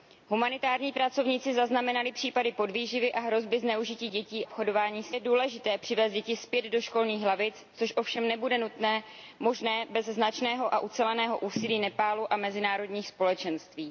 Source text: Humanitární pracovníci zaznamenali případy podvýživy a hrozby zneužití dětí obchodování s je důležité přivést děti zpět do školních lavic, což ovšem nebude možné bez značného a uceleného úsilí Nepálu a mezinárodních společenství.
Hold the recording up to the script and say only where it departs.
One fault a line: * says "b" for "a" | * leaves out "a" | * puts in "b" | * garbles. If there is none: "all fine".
all fine